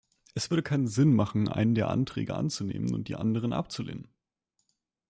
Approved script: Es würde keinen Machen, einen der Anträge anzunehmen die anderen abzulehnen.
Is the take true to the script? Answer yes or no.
no